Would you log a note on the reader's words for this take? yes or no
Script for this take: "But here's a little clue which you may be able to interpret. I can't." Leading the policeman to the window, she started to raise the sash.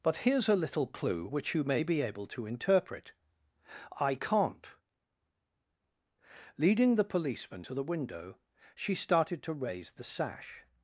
no